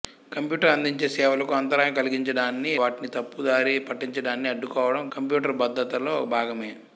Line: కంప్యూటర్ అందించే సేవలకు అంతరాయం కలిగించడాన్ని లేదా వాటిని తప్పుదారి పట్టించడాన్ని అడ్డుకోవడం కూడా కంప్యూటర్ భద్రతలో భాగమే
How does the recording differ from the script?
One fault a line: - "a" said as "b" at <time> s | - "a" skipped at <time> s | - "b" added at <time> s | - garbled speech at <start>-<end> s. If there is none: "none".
- "లేదా" skipped at 2.7 s
- "కూడా" skipped at 5.0 s